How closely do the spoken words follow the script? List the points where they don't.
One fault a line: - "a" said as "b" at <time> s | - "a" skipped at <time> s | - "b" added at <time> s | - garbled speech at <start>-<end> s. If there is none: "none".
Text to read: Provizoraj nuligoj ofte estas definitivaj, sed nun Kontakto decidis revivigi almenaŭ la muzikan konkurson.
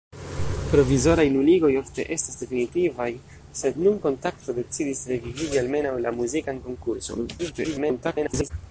- garbled speech at 7.4-8.5 s